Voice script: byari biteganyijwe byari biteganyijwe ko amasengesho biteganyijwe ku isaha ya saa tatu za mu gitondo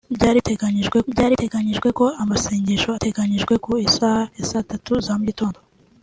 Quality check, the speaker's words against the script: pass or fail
pass